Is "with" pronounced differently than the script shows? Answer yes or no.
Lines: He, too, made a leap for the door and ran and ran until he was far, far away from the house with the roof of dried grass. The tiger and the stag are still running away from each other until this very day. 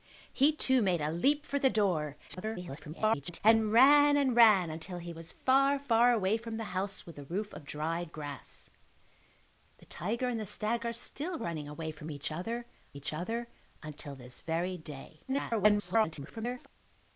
no